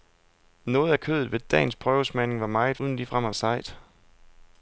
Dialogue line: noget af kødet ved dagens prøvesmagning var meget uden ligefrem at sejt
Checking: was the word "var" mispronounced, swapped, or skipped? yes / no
no